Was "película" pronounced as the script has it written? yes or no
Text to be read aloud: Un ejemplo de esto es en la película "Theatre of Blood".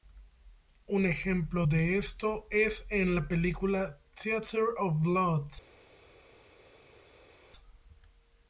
yes